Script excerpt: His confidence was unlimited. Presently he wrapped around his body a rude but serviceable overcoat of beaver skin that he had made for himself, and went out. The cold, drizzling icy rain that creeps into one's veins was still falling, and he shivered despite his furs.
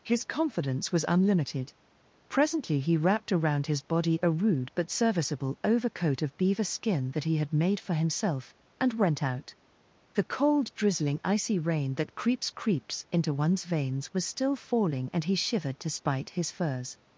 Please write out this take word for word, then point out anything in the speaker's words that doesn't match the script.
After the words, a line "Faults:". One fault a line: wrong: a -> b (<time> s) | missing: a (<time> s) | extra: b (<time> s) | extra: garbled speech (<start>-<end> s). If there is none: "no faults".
His confidence was unlimited. Presently he wrapped around his body a rude but serviceable overcoat of beaver skin that he had made for himself, and went out. The cold, drizzling icy rain that creeps creeps into one's veins was still falling, and he shivered despite his furs.
Faults:
extra: creeps (12.5 s)